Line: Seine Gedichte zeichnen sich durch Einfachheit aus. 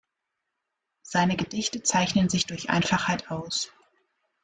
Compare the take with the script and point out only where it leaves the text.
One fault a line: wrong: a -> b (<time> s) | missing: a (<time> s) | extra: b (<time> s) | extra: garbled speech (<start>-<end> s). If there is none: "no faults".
no faults